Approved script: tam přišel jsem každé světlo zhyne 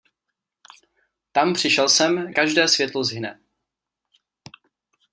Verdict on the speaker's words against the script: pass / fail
pass